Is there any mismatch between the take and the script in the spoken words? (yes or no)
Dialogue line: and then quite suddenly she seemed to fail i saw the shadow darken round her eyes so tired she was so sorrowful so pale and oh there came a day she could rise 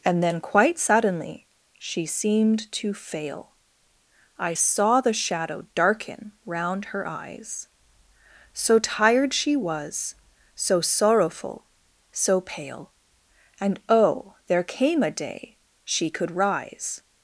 no